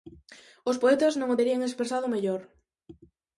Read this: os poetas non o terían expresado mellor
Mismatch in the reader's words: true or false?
false